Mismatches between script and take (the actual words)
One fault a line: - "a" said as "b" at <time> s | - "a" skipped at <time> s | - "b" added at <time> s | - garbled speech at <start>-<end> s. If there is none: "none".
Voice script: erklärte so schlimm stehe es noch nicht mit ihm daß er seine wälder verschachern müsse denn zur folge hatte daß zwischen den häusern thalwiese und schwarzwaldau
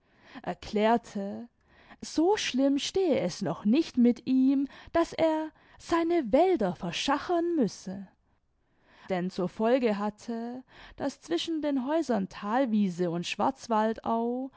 none